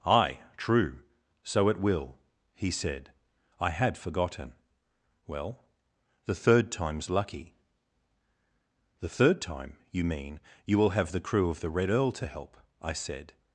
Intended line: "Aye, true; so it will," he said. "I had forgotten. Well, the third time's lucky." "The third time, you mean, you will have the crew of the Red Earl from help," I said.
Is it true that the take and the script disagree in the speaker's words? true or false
true